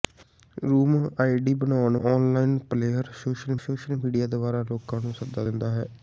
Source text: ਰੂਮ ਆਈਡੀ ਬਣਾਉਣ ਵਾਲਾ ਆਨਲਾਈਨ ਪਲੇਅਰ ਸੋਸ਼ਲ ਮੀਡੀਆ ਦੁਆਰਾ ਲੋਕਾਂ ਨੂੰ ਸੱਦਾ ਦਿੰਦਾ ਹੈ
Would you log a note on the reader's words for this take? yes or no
yes